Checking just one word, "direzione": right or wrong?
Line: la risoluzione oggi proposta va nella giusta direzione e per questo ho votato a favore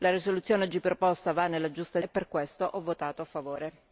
wrong